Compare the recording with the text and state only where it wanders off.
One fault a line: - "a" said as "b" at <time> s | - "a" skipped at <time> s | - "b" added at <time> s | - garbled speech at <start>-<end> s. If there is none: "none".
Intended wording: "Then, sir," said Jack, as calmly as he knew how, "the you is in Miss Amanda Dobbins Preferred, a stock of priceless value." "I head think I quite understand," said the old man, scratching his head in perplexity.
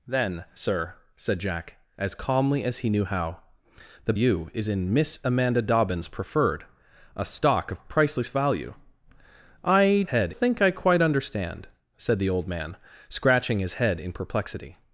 none